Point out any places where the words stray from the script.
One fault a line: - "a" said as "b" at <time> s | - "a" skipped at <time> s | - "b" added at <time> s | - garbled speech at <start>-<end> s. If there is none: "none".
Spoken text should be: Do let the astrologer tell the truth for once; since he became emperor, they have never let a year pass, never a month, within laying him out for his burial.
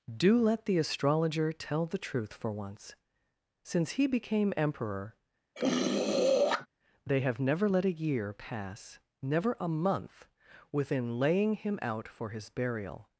none